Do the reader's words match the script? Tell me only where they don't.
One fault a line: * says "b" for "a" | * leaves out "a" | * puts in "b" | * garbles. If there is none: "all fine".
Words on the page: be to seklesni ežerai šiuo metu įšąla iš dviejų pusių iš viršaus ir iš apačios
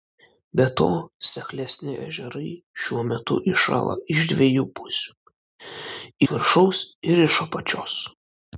* leaves out "iš"